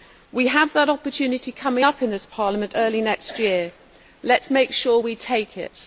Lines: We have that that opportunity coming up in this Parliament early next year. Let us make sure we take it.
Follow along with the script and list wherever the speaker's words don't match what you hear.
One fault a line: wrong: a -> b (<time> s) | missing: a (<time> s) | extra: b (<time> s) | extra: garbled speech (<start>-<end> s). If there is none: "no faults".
missing: that (0.9 s)